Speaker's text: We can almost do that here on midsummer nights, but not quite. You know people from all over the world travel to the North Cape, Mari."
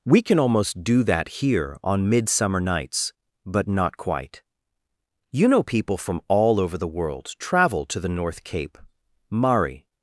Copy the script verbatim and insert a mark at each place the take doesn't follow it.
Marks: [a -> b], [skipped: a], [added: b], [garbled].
We can almost do that here on midsummer nights, but not quite. You know people from all over the world travel to the North Cape, Mari."